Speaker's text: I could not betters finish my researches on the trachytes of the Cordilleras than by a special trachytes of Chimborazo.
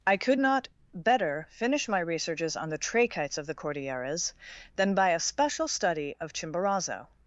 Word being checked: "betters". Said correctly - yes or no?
no